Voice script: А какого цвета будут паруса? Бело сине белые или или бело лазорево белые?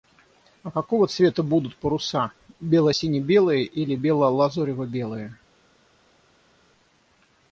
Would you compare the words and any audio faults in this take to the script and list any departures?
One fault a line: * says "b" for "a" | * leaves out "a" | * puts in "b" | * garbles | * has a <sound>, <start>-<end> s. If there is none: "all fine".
* leaves out "или"